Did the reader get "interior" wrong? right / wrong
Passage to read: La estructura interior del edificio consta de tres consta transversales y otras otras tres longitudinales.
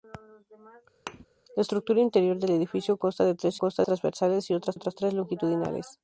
right